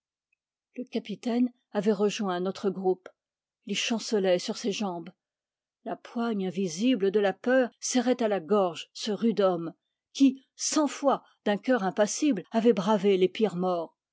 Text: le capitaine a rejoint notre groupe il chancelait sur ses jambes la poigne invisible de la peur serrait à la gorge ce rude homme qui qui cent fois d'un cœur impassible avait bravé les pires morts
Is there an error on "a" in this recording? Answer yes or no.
yes